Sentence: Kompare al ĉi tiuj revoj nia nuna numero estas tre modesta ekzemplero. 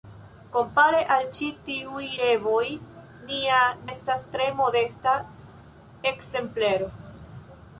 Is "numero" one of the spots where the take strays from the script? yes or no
yes